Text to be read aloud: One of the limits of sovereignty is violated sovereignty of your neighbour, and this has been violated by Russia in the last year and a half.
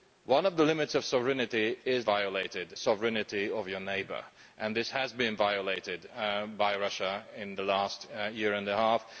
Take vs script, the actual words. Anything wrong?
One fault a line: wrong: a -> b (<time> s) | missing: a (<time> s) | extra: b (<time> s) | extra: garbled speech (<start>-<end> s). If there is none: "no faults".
no faults